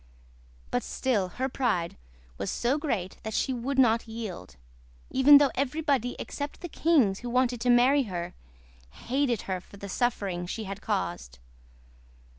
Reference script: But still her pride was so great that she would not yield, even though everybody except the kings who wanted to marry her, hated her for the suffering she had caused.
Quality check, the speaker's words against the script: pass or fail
pass